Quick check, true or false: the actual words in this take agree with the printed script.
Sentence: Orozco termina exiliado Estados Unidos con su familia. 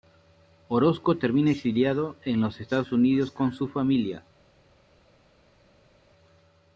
false